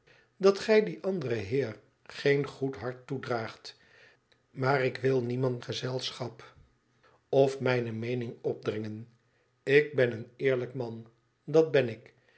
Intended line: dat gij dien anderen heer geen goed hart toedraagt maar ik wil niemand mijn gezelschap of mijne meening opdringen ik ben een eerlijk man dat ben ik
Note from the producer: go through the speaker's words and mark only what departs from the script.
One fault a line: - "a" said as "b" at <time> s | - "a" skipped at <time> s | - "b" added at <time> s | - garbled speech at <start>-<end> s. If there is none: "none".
- "mijn" skipped at 5.6 s